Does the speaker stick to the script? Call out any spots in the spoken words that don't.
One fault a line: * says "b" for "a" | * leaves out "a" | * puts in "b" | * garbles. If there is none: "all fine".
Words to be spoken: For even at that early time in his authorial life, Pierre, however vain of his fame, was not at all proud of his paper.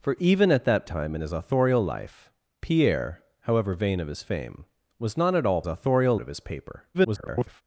* leaves out "early"
* says "authorial" for "proud"
* garbles